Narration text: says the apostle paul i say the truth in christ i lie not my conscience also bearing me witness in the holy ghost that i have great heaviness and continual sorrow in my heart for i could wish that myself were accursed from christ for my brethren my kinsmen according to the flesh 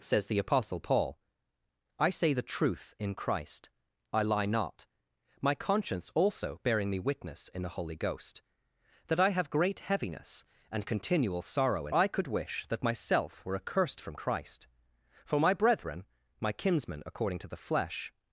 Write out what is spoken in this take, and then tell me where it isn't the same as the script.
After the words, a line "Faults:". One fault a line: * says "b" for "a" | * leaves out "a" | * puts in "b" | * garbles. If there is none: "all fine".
says the apostle paul i say the truth in christ i lie not my conscience also bearing me witness in the holy ghost that i have great heaviness and continual sorrow in i could wish that myself were accursed from christ for my brethren my kinsmen according to the flesh
Faults:
* leaves out "my heart for"